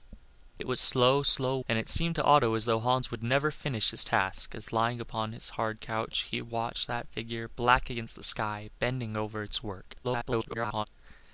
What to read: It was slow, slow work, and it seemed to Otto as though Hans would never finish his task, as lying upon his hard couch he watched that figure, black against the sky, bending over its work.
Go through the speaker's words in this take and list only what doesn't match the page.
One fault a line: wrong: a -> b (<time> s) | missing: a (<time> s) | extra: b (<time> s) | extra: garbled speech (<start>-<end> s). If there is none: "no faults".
missing: work (1.6 s)
extra: garbled speech (10.0-10.9 s)